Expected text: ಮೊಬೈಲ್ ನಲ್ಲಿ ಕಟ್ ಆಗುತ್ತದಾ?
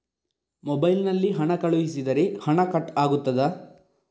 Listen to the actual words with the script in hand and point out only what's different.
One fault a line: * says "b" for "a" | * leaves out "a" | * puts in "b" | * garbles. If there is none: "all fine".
* puts in "ಹಣ ಕಳುಹಿಸಿದರೆ ಹಣ"